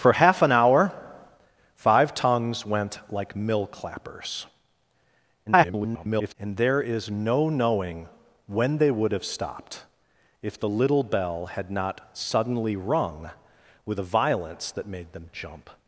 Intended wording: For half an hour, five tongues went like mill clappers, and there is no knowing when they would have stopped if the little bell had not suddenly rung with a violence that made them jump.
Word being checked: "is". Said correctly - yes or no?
yes